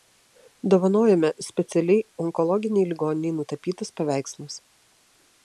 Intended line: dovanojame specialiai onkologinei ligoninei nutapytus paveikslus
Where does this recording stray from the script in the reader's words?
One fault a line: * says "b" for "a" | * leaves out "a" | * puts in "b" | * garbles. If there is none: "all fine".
all fine